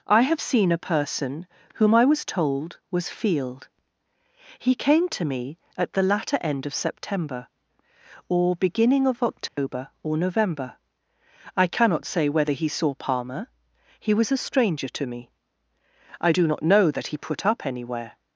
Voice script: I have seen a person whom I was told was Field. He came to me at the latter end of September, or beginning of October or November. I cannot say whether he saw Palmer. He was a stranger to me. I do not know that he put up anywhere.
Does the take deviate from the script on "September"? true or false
false